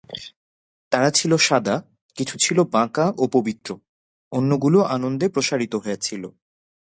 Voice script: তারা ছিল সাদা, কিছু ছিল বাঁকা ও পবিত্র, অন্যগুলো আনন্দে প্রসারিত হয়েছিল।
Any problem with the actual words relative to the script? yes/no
no